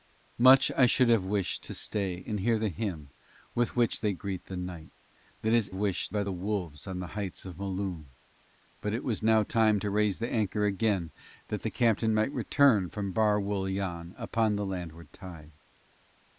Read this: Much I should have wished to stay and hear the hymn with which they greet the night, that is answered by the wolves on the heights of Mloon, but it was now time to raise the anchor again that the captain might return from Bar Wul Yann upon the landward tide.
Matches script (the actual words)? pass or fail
fail